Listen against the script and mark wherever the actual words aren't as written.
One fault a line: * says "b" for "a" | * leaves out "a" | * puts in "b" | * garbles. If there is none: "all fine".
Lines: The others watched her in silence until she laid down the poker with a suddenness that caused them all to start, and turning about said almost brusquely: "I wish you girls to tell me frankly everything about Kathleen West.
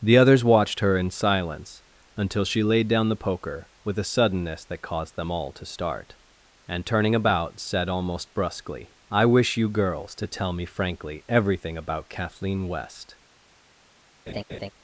all fine